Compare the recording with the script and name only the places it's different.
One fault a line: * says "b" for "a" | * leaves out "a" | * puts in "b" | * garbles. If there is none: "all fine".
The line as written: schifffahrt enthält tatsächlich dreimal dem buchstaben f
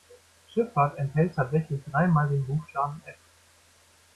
* says "den" for "dem"